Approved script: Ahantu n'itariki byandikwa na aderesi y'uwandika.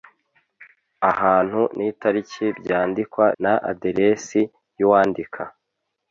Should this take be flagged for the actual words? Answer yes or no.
no